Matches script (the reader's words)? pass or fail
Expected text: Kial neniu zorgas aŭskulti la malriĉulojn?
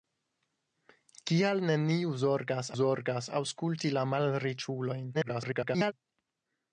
fail